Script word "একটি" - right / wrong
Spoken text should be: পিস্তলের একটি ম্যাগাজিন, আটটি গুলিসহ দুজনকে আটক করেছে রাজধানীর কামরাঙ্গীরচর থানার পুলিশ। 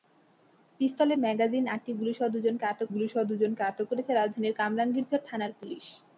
wrong